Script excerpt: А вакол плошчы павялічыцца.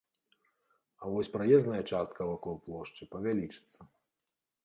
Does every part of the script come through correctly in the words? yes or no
no